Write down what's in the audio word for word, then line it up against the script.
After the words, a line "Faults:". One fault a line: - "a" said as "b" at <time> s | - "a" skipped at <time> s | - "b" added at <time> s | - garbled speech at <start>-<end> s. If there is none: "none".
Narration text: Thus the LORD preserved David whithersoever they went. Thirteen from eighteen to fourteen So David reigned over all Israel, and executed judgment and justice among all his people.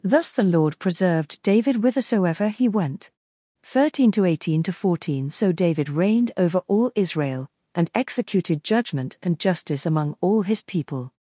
Thus the LORD preserved David whithersoever he went. Thirteen to eighteen to fourteen So David reigned over all Israel, and executed judgment and justice among all his people.
Faults:
- "they" said as "he" at 2.5 s
- "from" said as "to" at 4.1 s